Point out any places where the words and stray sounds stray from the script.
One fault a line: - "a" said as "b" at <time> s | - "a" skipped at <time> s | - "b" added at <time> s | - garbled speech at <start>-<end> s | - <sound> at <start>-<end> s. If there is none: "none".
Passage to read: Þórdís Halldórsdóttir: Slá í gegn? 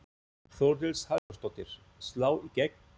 - dropout at 1.2-1.3 s